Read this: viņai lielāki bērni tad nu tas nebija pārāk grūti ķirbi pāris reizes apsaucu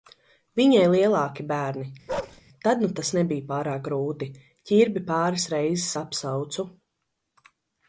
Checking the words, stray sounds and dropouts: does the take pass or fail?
fail